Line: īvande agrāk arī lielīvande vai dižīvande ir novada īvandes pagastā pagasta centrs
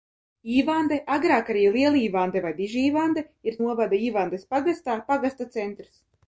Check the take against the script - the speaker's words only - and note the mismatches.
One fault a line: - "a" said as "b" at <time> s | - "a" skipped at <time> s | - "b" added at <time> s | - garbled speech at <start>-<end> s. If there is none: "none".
none